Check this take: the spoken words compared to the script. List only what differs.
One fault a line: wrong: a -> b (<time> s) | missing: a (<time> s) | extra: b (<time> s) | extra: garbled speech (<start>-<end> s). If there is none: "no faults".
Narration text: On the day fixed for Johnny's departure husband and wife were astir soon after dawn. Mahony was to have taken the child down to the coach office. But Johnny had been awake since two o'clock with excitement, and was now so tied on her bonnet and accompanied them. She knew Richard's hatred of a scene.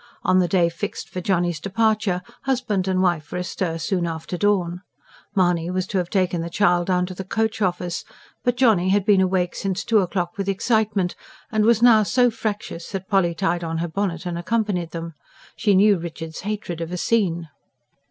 extra: fractious that Polly (12.3 s)